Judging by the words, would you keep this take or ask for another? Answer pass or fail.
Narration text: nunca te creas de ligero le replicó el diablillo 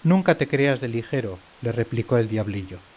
pass